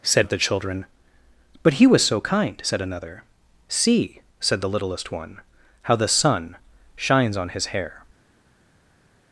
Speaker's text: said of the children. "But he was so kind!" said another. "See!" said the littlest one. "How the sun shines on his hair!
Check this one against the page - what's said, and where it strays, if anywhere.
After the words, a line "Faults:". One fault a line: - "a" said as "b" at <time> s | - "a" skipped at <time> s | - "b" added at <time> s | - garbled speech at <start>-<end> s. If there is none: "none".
said of the children. "But he was so kind!" said another. "See!" said the littlest one. "How the sun shines on his hair!
Faults:
none